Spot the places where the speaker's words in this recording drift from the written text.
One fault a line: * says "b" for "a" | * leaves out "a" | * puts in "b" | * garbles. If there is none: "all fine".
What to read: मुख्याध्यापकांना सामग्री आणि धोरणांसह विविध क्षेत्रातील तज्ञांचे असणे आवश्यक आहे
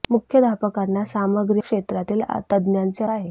* leaves out "आणि धोरणांसह विविध"
* leaves out "असणे आवश्यक"